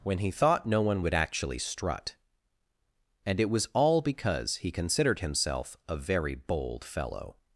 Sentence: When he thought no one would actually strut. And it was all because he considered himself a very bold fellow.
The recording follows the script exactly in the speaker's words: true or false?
true